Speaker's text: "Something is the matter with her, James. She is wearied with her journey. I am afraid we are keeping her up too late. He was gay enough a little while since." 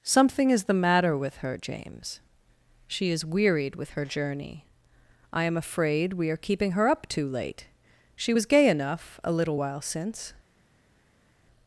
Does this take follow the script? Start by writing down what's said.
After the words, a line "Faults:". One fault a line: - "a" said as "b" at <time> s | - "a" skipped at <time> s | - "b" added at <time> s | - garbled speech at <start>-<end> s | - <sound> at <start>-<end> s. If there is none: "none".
"Something is the matter with her, James. She is wearied with her journey. I am afraid we are keeping her up too late. She was gay enough a little while since."
Faults:
- "He" said as "She" at 8.2 s